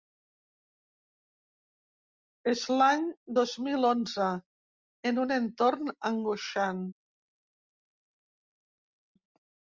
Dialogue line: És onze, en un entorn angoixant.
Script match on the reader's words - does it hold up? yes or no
no